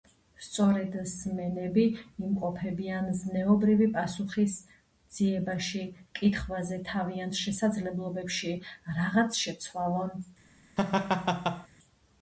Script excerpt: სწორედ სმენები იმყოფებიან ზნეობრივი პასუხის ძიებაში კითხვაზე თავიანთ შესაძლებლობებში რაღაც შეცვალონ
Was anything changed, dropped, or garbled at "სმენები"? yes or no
no